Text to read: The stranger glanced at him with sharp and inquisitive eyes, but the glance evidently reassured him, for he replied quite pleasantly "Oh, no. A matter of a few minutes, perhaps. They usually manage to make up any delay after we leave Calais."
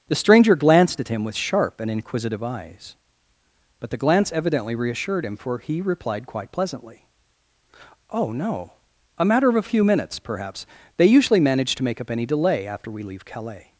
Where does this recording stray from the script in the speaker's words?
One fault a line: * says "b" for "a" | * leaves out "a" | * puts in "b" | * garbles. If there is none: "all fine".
all fine